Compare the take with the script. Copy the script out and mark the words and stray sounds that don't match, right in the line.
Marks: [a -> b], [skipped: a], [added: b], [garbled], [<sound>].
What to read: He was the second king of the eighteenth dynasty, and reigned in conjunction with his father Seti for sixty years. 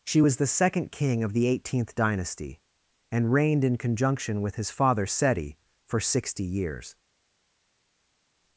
[He -> She] was the second king of the eighteenth dynasty, and reigned in conjunction with his father Seti for sixty years.